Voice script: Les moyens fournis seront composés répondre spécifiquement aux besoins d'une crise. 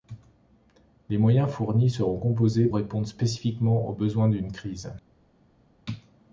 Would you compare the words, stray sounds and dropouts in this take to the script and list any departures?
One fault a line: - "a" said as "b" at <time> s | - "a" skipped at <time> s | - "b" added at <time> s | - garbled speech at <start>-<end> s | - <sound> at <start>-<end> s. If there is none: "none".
none